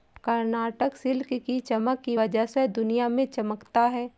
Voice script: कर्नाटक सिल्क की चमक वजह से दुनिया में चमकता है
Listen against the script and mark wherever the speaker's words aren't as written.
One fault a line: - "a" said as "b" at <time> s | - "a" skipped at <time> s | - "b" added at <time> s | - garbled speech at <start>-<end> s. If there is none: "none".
- "की" added at 2.0 s